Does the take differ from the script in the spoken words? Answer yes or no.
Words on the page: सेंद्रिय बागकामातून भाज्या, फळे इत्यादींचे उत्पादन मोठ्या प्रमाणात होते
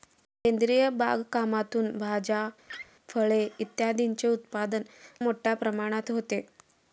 no